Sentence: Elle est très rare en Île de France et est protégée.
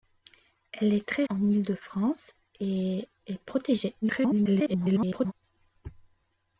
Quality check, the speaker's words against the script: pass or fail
fail